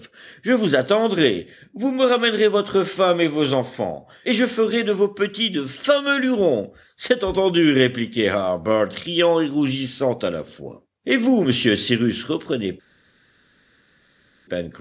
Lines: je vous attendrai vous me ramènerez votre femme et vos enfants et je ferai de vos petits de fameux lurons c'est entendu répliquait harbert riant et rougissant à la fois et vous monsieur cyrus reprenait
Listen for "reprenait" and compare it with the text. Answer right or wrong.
right